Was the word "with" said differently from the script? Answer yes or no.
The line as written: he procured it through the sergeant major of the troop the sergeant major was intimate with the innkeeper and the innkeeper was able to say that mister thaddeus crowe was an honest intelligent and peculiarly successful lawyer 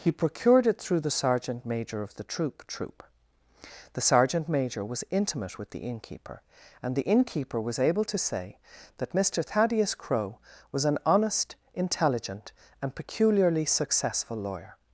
no